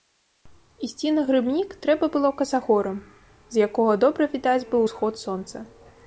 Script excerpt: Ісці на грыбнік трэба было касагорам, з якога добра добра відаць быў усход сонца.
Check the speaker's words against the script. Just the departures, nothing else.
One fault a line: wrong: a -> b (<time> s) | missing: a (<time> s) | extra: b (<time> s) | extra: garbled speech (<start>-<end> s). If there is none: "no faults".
missing: добра (4.2 s)